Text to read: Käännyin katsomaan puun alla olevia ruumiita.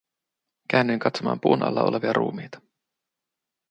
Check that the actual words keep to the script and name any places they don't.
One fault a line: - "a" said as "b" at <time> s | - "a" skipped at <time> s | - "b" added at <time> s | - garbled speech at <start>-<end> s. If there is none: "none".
none